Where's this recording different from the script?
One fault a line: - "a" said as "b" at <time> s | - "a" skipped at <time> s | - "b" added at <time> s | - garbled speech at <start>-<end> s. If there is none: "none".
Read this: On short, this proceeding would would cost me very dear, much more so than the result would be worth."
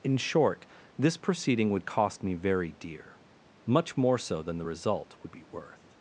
- "On" said as "In" at 0.0 s
- "would" skipped at 1.9 s